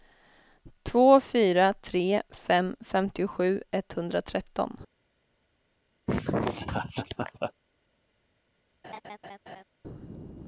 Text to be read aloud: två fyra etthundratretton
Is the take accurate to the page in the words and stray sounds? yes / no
no